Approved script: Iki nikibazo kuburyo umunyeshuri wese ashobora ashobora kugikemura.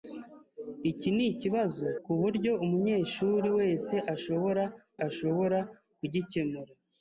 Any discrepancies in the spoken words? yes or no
no